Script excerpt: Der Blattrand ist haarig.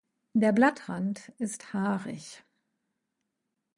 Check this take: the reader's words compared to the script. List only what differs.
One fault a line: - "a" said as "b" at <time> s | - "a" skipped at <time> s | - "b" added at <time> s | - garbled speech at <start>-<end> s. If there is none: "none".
none